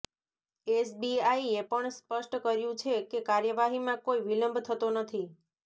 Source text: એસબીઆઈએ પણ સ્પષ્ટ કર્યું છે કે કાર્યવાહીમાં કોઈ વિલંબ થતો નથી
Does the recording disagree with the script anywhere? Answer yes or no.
no